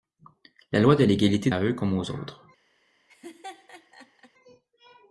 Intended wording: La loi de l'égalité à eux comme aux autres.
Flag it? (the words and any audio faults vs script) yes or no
yes